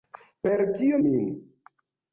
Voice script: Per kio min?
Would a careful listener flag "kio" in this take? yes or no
no